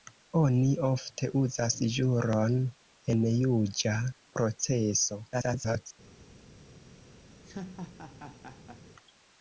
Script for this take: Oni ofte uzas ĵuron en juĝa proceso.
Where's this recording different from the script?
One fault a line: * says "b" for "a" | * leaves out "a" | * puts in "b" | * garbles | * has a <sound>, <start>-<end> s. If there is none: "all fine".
* garbles
* has a laugh, 7.3-8.8 s